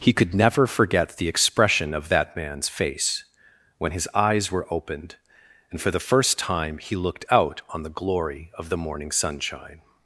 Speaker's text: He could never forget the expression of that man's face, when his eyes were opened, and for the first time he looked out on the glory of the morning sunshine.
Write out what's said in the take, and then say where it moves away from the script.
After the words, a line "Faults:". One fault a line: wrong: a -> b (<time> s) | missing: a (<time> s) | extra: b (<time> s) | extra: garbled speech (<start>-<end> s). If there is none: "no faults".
He could never forget the expression of that man's face, when his eyes were opened, and for the first time he looked out on the glory of the morning sunshine.
Faults:
no faults